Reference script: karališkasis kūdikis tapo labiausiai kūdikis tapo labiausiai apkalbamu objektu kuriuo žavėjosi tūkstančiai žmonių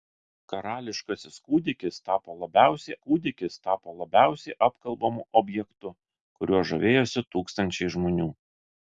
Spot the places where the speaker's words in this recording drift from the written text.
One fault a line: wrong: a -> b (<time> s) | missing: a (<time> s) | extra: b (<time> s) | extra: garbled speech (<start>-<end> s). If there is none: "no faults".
no faults